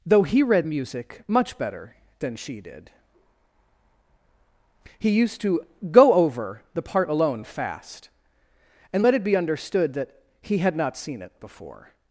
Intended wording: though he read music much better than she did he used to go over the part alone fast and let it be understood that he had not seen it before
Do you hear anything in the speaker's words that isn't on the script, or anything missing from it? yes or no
no